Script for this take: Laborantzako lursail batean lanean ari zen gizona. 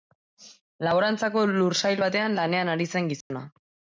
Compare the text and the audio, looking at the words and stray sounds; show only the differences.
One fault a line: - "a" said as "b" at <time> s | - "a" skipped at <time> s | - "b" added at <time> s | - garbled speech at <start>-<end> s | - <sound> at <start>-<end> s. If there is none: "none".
- dropout at 3.2-3.3 s